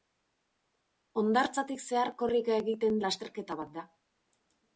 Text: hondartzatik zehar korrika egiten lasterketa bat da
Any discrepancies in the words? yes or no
no